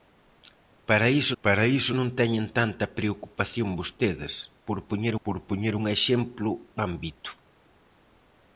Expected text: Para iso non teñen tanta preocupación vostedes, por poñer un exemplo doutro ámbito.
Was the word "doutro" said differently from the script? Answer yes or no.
yes